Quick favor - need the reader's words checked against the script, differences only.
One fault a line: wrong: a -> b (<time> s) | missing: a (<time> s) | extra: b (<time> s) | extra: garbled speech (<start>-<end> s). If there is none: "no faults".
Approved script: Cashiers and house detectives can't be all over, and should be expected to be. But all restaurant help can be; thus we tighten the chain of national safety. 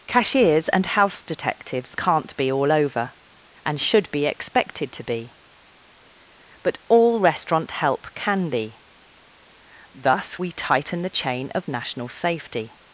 no faults